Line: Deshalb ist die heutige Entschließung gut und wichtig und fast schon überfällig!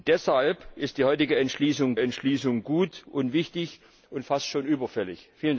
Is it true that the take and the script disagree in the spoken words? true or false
true